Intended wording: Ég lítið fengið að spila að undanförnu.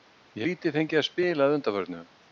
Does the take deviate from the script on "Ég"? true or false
false